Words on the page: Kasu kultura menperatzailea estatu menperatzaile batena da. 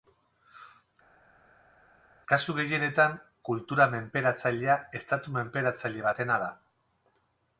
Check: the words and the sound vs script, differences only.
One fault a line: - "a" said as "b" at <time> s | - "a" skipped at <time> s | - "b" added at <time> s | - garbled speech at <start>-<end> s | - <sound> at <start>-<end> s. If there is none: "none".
- "gehienetan" added at 2.6 s